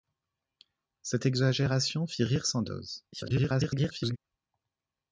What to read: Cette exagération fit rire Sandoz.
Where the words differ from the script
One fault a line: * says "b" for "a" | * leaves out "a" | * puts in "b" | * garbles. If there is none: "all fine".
* garbles